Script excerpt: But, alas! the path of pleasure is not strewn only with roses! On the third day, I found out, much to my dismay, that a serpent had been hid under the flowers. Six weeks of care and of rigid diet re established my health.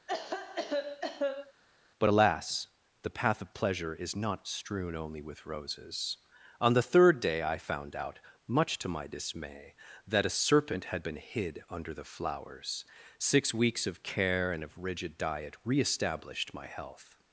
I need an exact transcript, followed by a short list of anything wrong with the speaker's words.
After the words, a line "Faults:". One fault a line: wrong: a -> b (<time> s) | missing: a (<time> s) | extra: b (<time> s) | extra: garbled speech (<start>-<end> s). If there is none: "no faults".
But, alas! the path of pleasure is not strewn only with roses! On the third day, I found out, much to my dismay, that a serpent had been hid under the flowers. Six weeks of care and of rigid diet re established my health.
Faults:
no faults